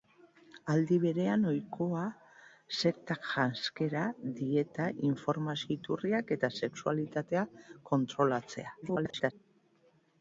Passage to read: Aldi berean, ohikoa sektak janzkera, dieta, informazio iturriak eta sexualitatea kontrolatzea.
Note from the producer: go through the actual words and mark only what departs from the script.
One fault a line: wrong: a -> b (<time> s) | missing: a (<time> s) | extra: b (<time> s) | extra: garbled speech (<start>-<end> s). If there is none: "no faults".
extra: garbled speech (8.8-9.3 s)